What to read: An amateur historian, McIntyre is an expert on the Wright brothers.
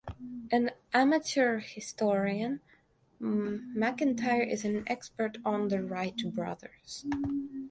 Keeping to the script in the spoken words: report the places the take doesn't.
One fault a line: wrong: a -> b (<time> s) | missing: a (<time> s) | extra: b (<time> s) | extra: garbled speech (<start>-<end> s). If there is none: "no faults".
no faults